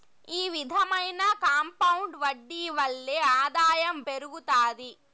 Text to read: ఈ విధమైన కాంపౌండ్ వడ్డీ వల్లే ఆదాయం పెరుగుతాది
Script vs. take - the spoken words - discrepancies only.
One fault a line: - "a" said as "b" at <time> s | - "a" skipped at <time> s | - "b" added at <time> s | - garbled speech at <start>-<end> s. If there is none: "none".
none